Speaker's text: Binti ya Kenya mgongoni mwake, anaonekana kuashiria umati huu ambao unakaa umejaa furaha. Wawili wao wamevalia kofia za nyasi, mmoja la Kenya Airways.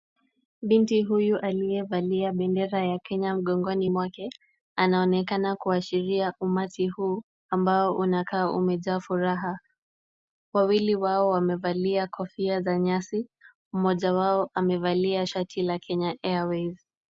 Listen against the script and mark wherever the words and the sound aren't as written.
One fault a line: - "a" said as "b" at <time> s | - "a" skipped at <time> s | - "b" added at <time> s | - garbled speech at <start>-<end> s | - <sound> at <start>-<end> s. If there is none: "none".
- "huyu aliyevalia bendera" added at 1.0 s
- "wao amevalia shati" added at 14.1 s